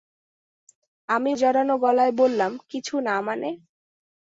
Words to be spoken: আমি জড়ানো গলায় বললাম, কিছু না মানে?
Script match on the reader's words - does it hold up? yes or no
yes